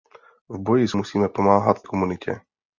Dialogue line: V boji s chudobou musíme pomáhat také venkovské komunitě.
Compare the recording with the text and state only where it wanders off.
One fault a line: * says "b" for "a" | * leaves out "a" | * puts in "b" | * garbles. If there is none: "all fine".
* leaves out "chudobou"
* leaves out "také venkovské"